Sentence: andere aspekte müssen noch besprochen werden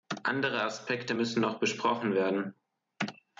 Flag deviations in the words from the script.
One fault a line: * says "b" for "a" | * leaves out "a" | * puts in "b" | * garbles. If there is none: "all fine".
all fine